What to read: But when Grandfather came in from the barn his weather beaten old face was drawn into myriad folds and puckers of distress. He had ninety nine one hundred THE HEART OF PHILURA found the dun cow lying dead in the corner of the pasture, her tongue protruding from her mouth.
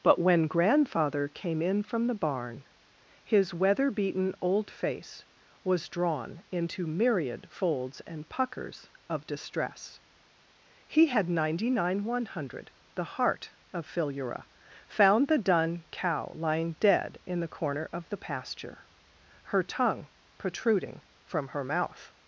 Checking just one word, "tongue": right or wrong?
right